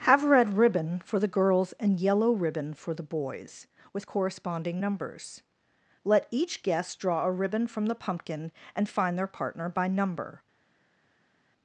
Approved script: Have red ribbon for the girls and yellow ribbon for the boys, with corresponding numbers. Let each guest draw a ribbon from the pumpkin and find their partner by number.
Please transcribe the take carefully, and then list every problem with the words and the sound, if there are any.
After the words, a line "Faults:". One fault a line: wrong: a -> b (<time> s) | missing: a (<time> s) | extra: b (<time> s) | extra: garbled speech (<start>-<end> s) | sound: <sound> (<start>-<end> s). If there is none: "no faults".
Have red ribbon for the girls and yellow ribbon for the boys, with corresponding numbers. Let each guest draw a ribbon from the pumpkin and find their partner by number.
Faults:
no faults